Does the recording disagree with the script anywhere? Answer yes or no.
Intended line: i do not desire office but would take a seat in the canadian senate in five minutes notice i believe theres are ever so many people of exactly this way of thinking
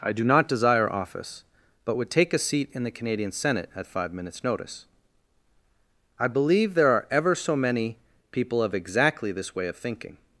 yes